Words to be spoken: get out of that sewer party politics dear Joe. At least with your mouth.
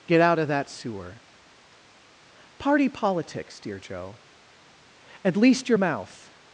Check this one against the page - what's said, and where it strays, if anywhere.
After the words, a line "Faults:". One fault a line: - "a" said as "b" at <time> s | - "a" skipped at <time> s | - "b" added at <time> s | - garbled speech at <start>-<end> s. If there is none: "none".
get out of that sewer party politics dear Joe. At least your mouth.
Faults:
- "with" skipped at 5.7 s